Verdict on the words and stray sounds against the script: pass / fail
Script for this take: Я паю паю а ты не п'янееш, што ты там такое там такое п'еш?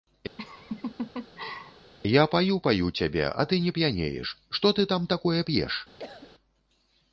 fail